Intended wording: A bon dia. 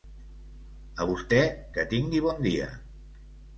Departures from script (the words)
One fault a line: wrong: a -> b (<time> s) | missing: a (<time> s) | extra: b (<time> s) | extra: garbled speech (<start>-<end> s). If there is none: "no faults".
extra: vostè que tingui (1.1 s)